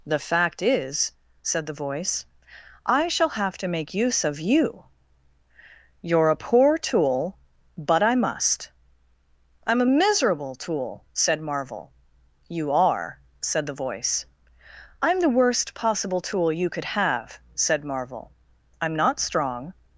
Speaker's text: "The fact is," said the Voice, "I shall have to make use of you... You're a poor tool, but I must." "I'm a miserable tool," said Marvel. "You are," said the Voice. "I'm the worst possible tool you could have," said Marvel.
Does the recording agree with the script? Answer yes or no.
no